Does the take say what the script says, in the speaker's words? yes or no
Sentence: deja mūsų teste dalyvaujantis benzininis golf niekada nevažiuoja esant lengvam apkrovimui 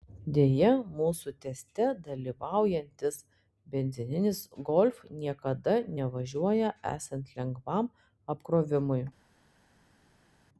yes